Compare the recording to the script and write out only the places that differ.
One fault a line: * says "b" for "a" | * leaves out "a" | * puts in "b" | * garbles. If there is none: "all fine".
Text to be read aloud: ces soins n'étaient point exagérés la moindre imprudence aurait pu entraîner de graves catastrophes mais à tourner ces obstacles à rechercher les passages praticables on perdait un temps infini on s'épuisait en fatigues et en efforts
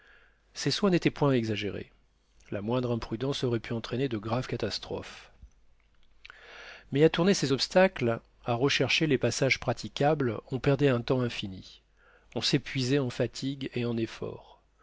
all fine